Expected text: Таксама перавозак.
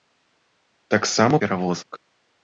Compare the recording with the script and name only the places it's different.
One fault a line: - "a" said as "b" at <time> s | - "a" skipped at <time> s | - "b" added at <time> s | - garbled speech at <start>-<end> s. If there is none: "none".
none